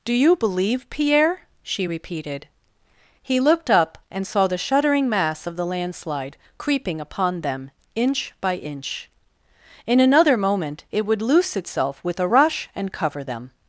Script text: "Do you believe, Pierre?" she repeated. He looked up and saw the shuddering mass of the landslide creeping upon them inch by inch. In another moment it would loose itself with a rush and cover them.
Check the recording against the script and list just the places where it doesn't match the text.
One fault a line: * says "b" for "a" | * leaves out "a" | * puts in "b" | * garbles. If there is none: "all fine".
all fine